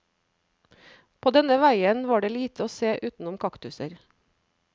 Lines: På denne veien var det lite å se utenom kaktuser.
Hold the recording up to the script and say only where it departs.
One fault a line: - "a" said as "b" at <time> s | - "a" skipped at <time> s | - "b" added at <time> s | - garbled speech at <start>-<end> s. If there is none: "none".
none